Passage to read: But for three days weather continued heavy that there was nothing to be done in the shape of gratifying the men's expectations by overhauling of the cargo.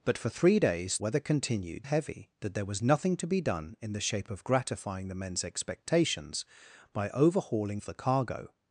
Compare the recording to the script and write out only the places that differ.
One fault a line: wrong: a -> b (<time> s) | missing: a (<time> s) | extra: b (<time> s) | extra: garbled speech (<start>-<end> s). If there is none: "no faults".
no faults